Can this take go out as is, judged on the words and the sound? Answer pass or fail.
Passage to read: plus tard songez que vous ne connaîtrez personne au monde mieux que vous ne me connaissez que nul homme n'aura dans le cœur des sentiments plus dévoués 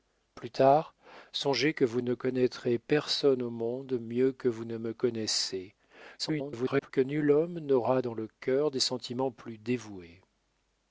fail